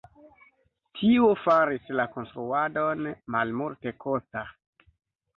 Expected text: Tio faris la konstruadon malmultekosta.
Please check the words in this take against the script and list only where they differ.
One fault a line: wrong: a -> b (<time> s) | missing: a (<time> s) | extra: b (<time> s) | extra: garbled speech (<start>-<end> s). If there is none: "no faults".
no faults